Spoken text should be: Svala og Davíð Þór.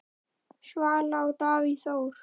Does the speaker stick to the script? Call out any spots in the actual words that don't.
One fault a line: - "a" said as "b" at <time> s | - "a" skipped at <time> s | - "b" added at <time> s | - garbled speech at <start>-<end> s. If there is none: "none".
none